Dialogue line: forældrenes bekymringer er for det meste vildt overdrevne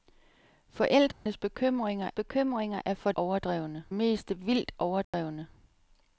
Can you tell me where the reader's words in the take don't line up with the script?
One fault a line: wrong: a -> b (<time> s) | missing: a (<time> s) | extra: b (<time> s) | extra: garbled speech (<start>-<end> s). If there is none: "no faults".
extra: bekymringer (2.1 s)
wrong: det -> overdrevne (3.1 s)